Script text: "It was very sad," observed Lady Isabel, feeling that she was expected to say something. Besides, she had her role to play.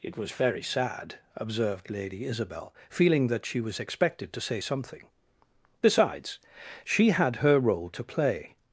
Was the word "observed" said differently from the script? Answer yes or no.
no